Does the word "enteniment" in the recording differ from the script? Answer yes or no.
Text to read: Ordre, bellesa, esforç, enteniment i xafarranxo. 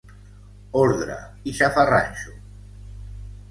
yes